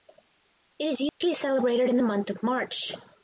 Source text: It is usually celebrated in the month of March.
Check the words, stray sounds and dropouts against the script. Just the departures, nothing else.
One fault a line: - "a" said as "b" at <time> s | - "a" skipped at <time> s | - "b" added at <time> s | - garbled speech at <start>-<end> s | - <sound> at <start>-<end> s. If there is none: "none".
- dropout at 1.1-1.2 s